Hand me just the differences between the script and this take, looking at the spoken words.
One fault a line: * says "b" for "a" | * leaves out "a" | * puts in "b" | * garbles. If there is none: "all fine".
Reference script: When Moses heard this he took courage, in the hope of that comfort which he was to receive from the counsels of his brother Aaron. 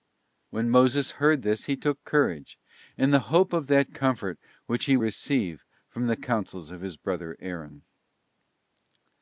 * leaves out "was to"